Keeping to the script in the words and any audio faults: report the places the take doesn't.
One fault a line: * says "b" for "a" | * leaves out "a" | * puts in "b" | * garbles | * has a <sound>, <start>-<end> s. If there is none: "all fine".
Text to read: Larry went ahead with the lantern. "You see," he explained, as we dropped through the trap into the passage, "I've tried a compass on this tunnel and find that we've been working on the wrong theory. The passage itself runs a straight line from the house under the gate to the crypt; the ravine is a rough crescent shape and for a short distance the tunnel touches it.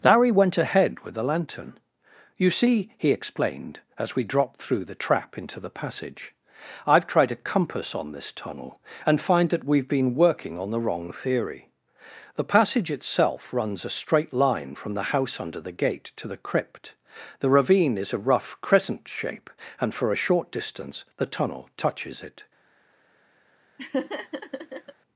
* has a laugh, 23.8-24.9 s